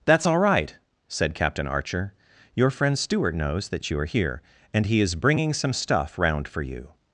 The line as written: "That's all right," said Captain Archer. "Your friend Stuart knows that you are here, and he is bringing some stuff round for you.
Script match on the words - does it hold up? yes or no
yes